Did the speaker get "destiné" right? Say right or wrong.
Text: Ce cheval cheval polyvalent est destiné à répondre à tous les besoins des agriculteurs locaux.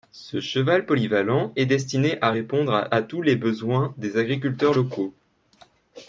right